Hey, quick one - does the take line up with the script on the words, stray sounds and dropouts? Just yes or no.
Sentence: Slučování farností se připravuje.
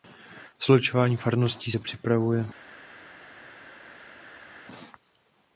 yes